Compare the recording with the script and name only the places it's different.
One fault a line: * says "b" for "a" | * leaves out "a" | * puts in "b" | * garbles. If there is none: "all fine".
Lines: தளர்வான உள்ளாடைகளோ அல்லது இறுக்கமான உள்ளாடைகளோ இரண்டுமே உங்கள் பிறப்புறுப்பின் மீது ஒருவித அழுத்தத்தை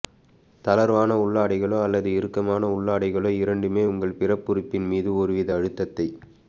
all fine